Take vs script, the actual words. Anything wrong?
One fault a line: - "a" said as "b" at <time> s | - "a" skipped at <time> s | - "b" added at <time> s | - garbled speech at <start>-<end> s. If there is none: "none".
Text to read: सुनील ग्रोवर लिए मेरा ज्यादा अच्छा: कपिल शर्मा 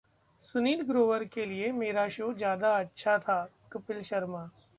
- "के" added at 1.2 s
- "शो" added at 2.1 s
- "था" added at 3.2 s